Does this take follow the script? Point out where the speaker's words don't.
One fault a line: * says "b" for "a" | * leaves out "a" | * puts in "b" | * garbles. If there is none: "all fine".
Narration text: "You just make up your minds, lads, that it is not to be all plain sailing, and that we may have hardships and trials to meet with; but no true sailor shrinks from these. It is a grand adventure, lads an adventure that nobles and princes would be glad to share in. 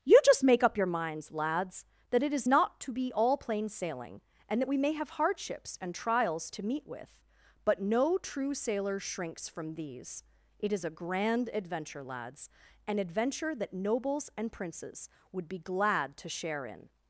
all fine